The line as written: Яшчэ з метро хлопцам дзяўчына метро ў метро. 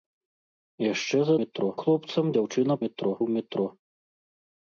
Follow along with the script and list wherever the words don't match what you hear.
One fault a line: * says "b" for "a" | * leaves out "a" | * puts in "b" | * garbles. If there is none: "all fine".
all fine